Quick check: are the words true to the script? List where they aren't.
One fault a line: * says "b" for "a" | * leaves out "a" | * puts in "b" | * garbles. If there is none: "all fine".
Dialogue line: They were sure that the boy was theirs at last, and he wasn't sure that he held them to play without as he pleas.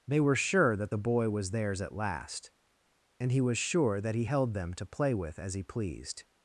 * says "was" for "wasn't"
* says "with" for "without"
* says "pleased" for "pleas"